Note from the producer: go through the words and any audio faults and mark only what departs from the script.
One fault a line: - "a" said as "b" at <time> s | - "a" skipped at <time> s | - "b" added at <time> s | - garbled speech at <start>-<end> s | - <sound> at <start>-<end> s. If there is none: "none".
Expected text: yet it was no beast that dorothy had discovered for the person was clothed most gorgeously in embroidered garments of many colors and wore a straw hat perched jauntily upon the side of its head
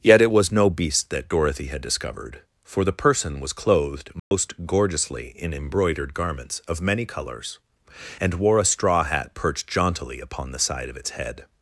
- dropout at 4.2-4.3 s